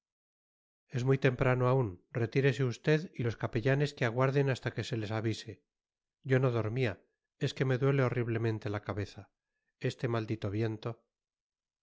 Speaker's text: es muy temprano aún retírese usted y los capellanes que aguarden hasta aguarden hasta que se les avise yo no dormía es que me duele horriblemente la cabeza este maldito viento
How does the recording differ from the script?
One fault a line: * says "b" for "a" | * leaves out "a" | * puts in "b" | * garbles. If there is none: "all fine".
* leaves out "aguarden hasta"